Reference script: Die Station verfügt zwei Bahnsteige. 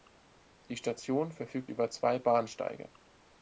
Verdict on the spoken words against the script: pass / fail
fail